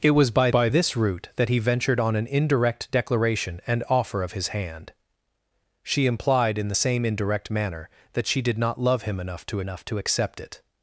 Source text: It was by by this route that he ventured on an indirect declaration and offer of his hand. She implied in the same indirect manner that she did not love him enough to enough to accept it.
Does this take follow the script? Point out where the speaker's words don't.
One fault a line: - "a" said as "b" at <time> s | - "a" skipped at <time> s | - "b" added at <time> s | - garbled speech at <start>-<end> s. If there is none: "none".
none